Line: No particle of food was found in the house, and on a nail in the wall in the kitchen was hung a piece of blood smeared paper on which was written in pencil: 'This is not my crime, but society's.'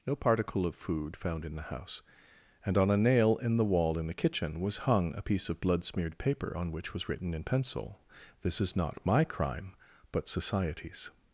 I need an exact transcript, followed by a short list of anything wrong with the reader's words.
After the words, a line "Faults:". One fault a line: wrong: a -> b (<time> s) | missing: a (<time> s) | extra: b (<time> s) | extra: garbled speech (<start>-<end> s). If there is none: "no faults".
No particle of food found in the house, and on a nail in the wall in the kitchen was hung a piece of blood smeared paper on which was written in pencil: 'This is not my crime, but society's.'
Faults:
missing: was (1.1 s)